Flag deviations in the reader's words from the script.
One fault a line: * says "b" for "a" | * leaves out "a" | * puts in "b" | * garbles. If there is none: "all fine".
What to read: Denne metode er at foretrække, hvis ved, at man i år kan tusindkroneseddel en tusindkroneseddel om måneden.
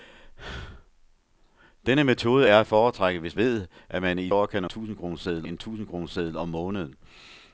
all fine